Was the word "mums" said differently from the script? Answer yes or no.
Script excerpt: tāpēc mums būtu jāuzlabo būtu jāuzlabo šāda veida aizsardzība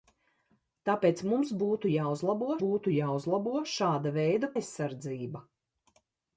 no